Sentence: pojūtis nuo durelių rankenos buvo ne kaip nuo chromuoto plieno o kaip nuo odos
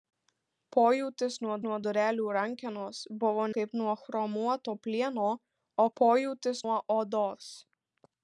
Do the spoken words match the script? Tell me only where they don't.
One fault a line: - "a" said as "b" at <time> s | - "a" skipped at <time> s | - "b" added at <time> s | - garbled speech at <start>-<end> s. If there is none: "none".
- "nuo" added at 1.6 s
- "ne" skipped at 3.5 s
- "kaip" said as "pojūtis" at 6.0 s